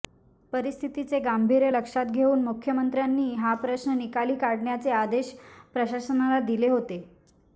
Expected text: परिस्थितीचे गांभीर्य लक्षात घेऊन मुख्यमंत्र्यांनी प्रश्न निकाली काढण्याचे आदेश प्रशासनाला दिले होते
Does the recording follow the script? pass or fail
fail